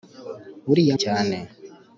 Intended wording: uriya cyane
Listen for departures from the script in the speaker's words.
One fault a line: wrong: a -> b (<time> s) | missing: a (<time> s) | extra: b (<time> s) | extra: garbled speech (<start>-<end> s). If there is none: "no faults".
no faults